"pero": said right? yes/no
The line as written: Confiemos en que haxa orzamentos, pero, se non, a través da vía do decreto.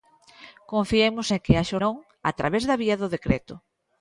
no